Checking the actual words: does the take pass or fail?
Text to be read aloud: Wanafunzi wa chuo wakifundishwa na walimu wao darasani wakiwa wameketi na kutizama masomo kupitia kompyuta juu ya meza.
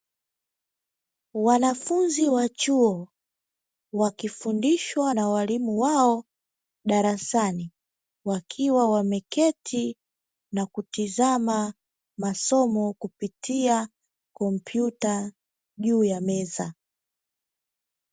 pass